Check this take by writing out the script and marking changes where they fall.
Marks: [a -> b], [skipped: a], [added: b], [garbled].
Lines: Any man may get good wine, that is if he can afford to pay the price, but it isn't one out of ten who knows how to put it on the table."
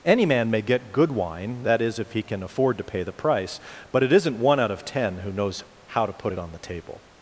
Any man may get good wine, that is if he can afford to pay the price, but it isn't one out of ten who knows how to put it on the table."